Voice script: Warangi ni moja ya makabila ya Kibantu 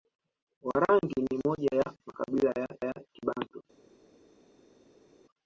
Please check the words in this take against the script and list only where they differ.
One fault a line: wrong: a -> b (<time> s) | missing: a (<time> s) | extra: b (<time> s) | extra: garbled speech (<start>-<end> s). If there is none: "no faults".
extra: ya (2.8 s)